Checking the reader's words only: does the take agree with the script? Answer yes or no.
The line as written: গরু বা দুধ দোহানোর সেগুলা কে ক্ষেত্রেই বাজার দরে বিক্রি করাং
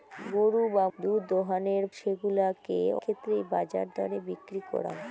yes